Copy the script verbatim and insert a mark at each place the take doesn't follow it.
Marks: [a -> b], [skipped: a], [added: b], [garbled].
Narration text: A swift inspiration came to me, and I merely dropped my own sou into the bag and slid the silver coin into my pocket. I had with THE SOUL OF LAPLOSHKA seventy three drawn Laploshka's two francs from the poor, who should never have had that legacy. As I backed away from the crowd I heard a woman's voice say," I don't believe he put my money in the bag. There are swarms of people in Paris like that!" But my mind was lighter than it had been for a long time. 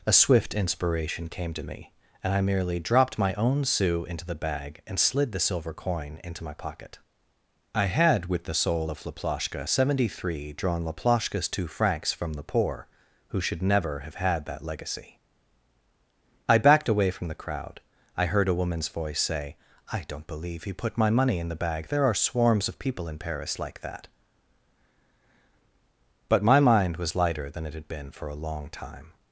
A swift inspiration came to me, and I merely dropped my own sou into the bag and slid the silver coin into my pocket. I had with THE SOUL OF LAPLOSHKA seventy three drawn Laploshka's two francs from the poor, who should never have had that legacy. [skipped: As] I backed away from the crowd I heard a woman's voice say," I don't believe he put my money in the bag. There are swarms of people in Paris like that!" But my mind was lighter than it had been for a long time.